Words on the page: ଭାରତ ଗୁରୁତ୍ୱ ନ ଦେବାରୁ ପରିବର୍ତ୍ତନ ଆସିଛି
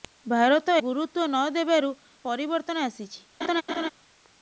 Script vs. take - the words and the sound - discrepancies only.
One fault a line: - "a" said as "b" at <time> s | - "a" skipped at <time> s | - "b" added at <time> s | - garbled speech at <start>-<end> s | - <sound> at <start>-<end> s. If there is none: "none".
- laugh at 3.4-3.9 s